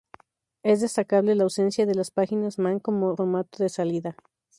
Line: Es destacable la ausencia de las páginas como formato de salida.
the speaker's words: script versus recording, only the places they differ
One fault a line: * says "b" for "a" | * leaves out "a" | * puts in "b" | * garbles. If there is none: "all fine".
* puts in "man"